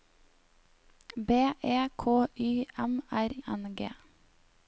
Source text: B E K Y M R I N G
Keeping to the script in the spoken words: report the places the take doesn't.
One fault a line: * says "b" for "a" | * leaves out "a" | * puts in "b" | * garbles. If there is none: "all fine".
* leaves out "I"